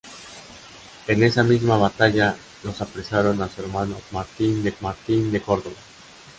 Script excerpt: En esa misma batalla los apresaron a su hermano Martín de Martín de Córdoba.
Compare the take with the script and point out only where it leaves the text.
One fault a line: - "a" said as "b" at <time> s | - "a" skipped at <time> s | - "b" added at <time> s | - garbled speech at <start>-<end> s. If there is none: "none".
none